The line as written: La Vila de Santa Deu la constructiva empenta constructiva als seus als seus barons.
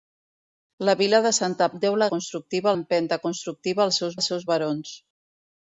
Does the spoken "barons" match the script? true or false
true